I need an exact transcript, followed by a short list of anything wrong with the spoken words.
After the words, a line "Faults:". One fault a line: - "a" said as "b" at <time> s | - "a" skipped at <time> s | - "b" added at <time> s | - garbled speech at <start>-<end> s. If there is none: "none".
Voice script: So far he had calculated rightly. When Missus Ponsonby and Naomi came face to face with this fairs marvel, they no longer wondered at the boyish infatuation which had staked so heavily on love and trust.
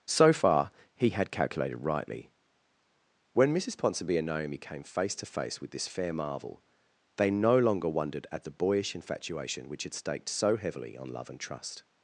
So far he had calculated rightly. When Missus Ponsonby and Naomi came face to face with this fair marvel, they no longer wondered at the boyish infatuation which had staked so heavily on love and trust.
Faults:
- "fairs" said as "fair" at 5.9 s